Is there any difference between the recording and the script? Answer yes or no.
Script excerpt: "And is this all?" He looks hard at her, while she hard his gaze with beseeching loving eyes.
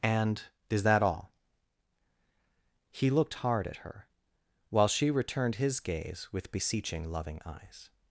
yes